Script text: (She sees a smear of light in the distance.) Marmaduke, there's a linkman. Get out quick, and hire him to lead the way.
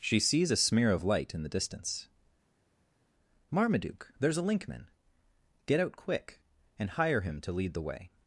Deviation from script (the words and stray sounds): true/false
false